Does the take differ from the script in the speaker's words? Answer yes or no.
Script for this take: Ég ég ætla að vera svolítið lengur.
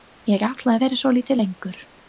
yes